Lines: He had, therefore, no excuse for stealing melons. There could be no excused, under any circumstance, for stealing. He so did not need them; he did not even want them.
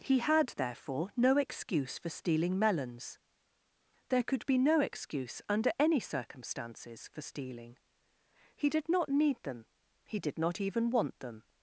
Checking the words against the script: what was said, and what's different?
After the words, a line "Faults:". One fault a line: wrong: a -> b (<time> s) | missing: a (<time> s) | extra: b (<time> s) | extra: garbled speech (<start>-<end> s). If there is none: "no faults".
He had, therefore, no excuse for stealing melons. There could be no excuse, under any circumstances, for stealing. He did not need them; he did not even want them.
Faults:
wrong: excused -> excuse (4.8 s)
wrong: circumstance -> circumstances (6.0 s)
missing: so (8.7 s)